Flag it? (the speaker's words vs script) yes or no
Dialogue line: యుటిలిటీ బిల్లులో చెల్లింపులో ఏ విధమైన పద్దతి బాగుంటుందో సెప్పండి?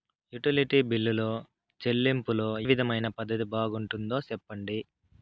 yes